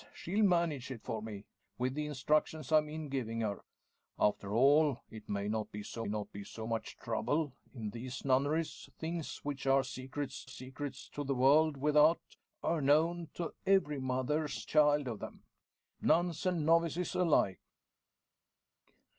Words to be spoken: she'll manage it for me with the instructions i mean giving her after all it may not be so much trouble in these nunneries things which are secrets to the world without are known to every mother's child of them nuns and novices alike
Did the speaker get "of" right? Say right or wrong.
right